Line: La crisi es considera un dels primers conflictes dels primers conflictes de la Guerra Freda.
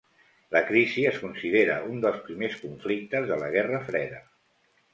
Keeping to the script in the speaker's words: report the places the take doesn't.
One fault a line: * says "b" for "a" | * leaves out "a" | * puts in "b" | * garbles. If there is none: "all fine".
* leaves out "dels primers conflictes"